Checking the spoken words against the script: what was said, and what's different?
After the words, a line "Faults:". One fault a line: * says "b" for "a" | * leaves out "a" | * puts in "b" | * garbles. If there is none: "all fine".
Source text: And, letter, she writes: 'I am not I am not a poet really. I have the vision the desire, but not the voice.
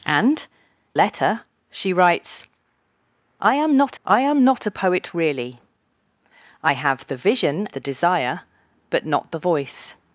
And, letter, she writes: 'I am not I am not a poet really. I have the vision the desire, but not the voice.
Faults:
all fine